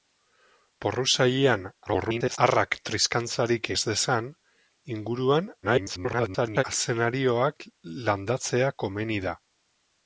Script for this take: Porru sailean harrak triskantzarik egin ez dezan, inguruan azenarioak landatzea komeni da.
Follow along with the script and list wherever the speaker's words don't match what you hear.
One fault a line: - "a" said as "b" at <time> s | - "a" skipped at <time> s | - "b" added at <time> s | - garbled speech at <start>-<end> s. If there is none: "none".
- garbled speech at 1.9-2.4 s
- "egin" skipped at 3.7 s
- garbled speech at 5.6-6.6 s